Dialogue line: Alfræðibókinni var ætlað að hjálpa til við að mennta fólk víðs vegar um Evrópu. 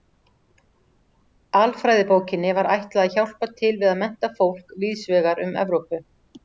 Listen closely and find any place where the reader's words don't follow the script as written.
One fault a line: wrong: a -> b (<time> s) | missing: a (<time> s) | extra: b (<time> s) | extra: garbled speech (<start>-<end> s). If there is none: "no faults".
no faults